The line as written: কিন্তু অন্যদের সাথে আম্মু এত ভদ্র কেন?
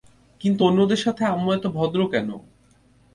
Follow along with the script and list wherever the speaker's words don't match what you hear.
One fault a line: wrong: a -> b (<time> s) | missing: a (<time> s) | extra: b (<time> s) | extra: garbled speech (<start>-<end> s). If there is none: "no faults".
no faults